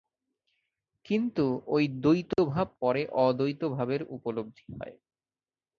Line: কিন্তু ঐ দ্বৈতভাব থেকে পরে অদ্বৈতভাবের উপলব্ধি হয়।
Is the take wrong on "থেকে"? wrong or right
wrong